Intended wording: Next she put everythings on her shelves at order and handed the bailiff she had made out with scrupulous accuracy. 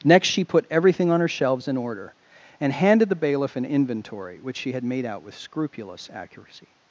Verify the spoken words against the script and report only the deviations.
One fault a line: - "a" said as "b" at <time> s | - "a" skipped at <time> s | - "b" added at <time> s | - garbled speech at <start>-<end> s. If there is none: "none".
- "everythings" said as "everything" at 0.7 s
- "at" said as "in" at 1.7 s
- "an inventory which" added at 3.5 s